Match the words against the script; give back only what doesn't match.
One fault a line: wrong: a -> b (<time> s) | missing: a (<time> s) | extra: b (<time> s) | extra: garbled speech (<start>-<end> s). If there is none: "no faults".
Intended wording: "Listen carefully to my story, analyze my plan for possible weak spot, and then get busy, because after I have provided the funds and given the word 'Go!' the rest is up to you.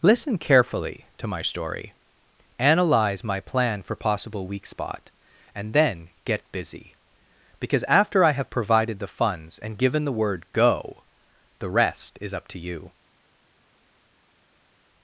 no faults